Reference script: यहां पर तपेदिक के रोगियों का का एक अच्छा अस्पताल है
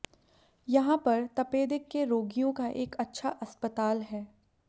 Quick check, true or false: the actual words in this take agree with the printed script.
false